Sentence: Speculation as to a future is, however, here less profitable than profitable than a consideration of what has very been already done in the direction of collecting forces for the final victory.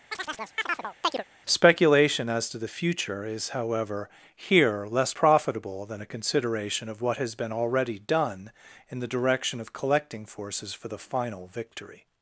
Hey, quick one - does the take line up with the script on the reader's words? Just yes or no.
no